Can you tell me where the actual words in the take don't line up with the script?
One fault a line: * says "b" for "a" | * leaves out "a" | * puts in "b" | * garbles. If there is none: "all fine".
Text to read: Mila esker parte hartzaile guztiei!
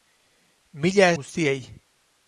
* leaves out "esker parte hartzaile"